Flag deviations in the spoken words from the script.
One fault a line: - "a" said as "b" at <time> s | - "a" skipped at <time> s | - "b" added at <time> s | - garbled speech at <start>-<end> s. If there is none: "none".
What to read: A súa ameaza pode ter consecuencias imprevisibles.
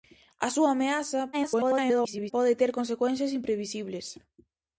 - garbled speech at 1.3-2.3 s